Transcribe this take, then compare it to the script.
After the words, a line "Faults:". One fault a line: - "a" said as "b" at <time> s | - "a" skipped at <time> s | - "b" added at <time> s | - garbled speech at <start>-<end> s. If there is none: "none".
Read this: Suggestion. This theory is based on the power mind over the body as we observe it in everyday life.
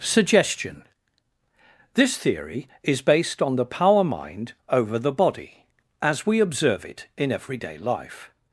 Suggestion. This theory is based on the power mind over the body as we observe it in everyday life.
Faults:
none